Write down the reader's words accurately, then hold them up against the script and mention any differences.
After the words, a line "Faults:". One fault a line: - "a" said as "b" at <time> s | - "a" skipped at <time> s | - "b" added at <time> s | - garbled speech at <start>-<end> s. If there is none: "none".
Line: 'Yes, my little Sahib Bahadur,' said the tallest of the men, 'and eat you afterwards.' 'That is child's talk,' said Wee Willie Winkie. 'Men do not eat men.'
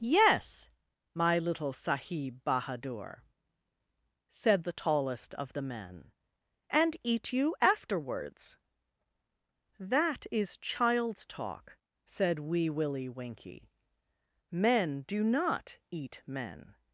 'Yes, my little Sahib Bahadur,' said the tallest of the men, 'and eat you afterwards.' 'That is child's talk,' said Wee Willie Winkie. 'Men do not eat men.'
Faults:
none